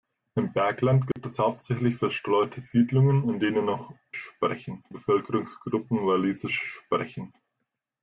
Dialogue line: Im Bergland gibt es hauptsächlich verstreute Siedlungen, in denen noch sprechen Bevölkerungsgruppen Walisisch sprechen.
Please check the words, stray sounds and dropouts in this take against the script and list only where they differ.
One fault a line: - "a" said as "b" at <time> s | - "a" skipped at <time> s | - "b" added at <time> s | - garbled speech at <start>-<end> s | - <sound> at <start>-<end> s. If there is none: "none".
- dropout at 1.1-1.2 s